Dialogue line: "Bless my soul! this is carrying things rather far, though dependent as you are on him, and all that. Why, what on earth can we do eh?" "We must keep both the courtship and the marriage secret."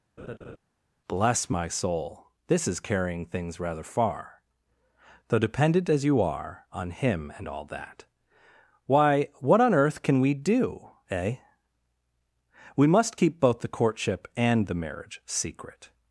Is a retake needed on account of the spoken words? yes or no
no